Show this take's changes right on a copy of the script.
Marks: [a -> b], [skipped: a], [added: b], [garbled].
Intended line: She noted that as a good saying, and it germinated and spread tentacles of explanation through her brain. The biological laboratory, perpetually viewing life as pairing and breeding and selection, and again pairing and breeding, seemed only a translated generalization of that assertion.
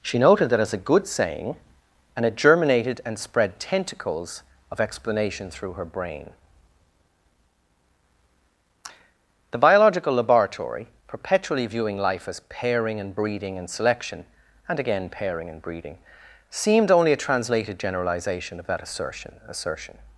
She noted that as a good saying, and it germinated and spread tentacles of explanation through her brain. The biological laboratory, perpetually viewing life as pairing and breeding and selection, and again pairing and breeding, seemed only a translated generalization of that assertion. [added: assertion]